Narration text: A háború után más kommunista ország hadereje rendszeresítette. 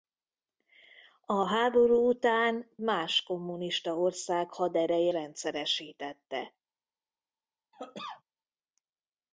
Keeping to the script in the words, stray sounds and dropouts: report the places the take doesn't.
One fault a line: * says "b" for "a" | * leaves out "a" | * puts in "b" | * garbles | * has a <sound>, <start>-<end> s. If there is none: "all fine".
* has a cough, 7.7-8.2 s